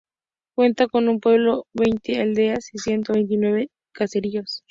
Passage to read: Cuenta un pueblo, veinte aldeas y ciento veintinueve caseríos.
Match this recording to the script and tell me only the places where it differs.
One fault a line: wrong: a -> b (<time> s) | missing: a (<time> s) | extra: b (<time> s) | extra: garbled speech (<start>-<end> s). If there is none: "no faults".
extra: con (0.9 s)